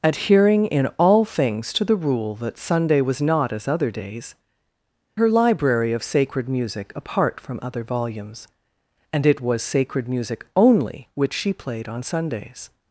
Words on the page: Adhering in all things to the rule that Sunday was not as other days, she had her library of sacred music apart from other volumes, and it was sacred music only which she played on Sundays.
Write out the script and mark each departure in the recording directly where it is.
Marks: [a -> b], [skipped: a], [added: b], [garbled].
Adhering in all things to the rule that Sunday was not as other days, [skipped: she had] her library of sacred music apart from other volumes, and it was sacred music only which she played on Sundays.